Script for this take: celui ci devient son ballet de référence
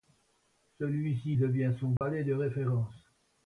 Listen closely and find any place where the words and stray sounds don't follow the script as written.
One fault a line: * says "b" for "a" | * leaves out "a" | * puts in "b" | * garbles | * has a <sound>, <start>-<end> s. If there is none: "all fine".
* has a dropout, 2.0-2.0 s